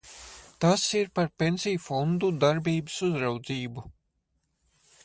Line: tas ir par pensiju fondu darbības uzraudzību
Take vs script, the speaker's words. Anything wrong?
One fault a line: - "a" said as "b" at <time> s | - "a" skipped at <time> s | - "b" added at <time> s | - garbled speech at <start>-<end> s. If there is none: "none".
none